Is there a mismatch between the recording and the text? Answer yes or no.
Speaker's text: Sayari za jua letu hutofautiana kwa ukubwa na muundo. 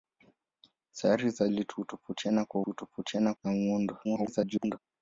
yes